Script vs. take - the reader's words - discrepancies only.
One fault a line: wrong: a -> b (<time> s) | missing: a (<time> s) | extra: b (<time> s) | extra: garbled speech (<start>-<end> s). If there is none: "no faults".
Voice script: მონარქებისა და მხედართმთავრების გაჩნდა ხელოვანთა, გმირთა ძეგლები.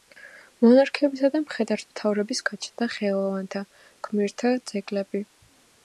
no faults